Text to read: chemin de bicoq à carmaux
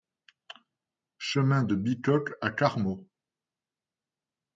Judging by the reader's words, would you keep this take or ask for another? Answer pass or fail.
pass